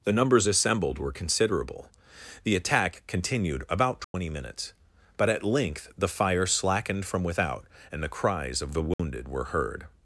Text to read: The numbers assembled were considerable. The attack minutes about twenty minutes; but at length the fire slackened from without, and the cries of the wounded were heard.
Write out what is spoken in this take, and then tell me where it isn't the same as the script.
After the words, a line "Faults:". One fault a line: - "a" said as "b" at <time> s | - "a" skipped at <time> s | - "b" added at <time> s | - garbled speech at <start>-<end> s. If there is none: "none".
The numbers assembled were considerable. The attack continued about twenty minutes; but at length the fire slackened from without, and the cries of the wounded were heard.
Faults:
- "minutes" said as "continued" at 3.1 s